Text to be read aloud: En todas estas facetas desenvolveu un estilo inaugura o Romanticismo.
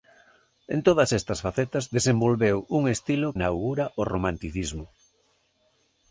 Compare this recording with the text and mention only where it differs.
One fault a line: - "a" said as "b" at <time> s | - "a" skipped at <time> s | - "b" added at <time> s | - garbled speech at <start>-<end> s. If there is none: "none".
none